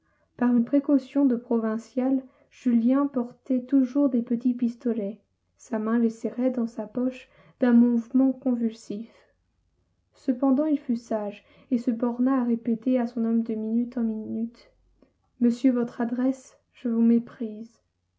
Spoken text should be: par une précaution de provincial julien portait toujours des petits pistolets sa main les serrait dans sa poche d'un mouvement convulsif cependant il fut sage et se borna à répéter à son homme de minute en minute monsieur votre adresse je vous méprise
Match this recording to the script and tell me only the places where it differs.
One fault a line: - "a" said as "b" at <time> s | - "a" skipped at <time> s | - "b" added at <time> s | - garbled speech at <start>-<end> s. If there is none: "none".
none